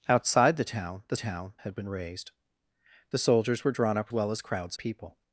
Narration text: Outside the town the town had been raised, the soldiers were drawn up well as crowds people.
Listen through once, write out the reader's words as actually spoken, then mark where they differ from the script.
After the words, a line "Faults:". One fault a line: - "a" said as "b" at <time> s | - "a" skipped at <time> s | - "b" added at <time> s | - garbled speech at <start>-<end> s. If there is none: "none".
Outside the town the town had been raised, the soldiers were drawn up well as crowds people.
Faults:
none